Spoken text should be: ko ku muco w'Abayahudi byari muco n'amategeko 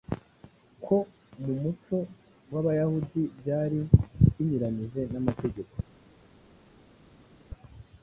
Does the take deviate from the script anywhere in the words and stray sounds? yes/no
yes